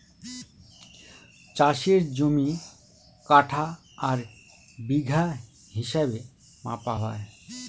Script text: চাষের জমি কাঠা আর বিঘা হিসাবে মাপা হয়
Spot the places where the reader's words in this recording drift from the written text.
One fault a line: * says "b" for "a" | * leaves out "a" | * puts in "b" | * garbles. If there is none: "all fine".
all fine